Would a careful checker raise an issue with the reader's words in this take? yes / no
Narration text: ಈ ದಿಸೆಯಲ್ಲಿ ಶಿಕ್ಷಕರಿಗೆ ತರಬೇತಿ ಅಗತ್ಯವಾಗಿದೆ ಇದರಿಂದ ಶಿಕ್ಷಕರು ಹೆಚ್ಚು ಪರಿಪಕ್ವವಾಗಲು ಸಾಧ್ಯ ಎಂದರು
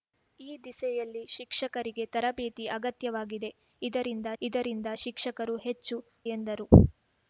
yes